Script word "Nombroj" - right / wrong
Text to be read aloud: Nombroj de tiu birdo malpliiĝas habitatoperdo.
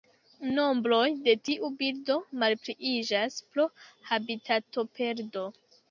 right